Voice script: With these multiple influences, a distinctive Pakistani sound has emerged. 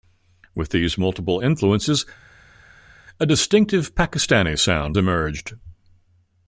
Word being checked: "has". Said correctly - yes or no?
no